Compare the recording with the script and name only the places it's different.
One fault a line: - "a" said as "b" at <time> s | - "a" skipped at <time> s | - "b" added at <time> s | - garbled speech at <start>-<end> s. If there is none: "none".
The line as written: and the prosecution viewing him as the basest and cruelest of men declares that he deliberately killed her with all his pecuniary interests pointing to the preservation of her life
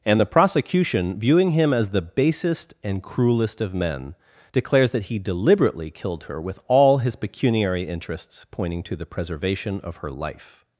none